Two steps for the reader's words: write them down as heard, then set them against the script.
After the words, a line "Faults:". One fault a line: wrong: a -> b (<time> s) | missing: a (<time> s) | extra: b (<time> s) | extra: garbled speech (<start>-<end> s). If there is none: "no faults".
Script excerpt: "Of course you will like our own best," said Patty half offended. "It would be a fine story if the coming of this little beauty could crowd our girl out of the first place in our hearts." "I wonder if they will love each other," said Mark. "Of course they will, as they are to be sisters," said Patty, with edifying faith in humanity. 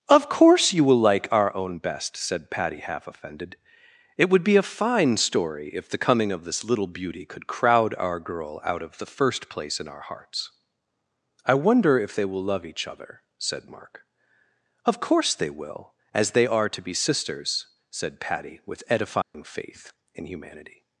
"Of course you will like our own best," said Patty half offended. "It would be a fine story if the coming of this little beauty could crowd our girl out of the first place in our hearts." "I wonder if they will love each other," said Mark. "Of course they will, as they are to be sisters," said Patty, with edifying faith in humanity.
Faults:
no faults